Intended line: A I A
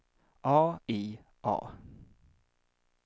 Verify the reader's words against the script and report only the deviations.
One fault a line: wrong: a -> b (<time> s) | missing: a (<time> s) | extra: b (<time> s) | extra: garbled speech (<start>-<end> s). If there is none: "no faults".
no faults